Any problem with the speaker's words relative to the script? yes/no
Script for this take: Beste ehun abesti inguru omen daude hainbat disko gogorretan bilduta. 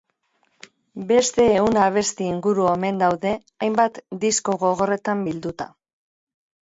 no